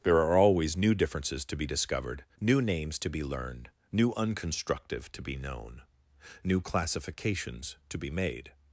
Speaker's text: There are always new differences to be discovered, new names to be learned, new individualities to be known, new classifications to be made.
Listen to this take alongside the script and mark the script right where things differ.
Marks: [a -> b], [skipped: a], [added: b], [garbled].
There are always new differences to be discovered, new names to be learned, new [individualities -> unconstructive] to be known, new classifications to be made.